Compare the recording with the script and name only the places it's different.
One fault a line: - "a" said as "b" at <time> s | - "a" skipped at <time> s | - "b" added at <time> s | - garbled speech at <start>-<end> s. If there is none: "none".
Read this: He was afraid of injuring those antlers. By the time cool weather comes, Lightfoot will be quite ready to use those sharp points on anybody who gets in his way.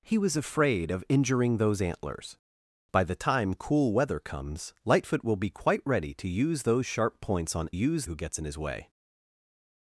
- "anybody" said as "use" at 7.7 s